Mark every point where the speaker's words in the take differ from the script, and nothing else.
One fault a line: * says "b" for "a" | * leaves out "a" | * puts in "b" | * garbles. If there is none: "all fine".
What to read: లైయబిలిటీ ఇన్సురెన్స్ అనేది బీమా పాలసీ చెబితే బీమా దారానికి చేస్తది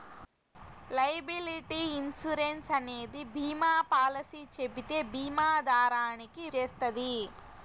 all fine